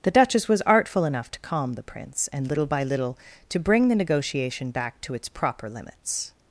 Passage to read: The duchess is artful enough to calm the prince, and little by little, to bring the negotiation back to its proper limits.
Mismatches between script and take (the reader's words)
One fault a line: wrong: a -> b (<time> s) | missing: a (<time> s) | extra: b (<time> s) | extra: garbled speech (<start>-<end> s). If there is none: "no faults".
wrong: is -> was (0.5 s)